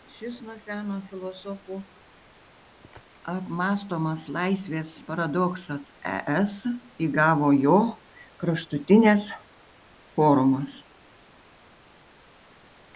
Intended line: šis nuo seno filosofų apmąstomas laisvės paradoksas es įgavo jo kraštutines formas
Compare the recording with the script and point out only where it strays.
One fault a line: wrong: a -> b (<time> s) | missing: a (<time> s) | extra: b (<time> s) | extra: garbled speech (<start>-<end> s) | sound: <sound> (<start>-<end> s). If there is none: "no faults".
no faults